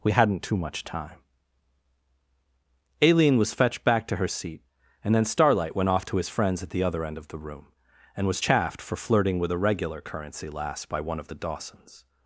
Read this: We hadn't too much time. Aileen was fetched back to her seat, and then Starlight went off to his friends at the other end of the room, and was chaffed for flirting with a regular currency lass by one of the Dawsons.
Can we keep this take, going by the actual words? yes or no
yes